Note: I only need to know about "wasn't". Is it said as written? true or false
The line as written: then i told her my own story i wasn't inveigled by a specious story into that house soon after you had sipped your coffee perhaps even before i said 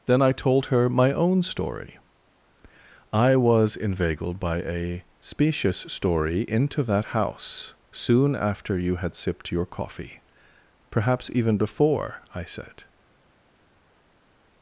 false